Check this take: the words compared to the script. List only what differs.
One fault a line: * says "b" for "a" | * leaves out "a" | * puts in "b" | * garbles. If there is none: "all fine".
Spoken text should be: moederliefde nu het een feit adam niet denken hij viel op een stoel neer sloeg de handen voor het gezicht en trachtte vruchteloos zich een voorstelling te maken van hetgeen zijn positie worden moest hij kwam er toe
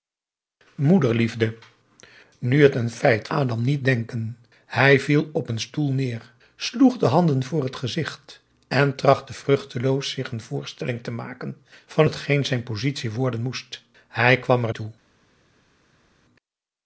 all fine